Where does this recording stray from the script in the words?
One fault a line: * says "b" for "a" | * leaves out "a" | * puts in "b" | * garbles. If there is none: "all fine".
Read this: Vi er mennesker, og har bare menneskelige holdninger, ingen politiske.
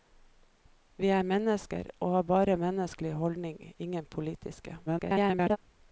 * garbles